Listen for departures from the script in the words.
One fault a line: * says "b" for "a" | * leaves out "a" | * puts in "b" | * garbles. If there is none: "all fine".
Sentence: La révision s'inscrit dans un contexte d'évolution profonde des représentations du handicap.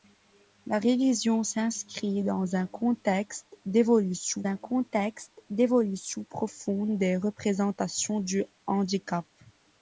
* puts in "un contexte d'évolution"